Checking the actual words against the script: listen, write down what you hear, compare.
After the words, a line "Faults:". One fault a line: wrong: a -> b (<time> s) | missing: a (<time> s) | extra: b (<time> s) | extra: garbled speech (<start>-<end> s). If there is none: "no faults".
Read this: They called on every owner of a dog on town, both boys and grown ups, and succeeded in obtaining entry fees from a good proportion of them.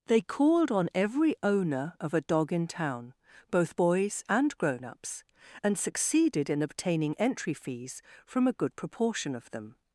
They called on every owner of a dog in town, both boys and grown ups, and succeeded in obtaining entry fees from a good proportion of them.
Faults:
wrong: on -> in (2.5 s)